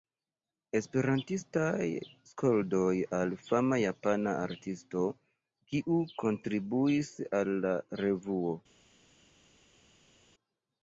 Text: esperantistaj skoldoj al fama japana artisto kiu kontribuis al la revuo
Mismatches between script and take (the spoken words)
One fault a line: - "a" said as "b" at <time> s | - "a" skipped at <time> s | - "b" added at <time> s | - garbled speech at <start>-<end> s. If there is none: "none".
none